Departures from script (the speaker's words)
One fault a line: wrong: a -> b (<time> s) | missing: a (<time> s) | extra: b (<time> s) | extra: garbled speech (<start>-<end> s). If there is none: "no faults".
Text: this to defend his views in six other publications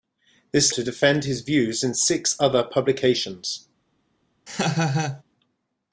no faults